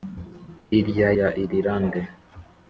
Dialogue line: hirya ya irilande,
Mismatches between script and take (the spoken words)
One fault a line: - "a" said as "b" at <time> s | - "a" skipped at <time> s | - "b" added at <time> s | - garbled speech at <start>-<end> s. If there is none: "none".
none